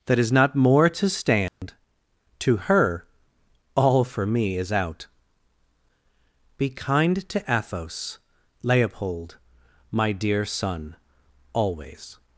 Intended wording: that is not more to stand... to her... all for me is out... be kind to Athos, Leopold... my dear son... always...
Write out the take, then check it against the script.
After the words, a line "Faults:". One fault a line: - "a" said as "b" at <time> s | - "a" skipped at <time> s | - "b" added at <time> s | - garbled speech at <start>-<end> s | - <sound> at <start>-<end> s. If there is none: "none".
that is not more to stand... to her... all for me is out... be kind to Athos, Leopold... my dear son... always...
Faults:
- dropout at 1.5-1.6 s